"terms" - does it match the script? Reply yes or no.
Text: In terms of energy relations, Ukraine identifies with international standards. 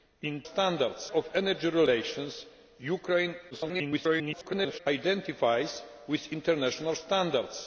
no